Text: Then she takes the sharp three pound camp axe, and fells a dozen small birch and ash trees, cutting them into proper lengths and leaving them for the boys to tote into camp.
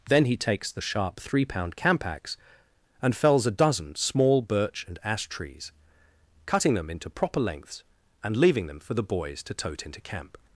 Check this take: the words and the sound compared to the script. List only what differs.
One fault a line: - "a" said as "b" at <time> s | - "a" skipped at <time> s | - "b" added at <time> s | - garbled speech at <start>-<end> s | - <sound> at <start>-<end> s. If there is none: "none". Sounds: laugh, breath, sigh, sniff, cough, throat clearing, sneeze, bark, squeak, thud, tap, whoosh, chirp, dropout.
- "she" said as "he" at 0.2 s